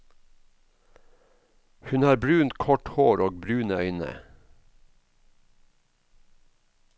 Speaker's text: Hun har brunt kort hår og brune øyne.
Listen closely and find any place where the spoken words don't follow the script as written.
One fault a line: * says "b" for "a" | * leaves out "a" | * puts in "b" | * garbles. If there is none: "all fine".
all fine